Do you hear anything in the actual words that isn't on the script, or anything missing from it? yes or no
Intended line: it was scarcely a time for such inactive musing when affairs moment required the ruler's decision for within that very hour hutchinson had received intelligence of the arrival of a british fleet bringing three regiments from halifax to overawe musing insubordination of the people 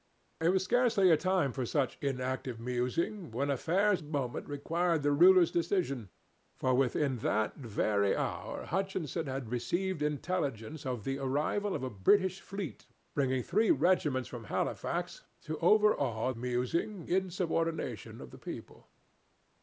no